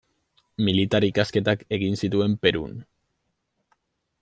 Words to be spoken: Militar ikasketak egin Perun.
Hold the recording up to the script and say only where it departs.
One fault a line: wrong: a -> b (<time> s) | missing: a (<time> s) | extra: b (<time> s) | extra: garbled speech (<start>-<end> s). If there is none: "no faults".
extra: zituen (2.0 s)